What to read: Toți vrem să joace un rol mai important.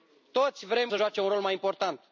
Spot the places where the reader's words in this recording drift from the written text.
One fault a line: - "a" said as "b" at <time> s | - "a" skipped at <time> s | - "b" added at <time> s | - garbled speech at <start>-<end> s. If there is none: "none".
none